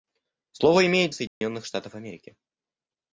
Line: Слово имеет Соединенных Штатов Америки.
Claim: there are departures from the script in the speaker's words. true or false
false